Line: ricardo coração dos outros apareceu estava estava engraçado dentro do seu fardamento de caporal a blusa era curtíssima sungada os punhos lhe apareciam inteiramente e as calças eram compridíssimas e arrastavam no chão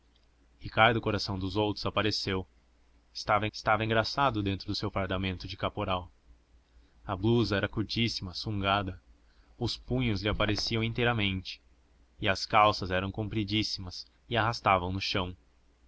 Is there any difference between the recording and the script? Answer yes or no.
no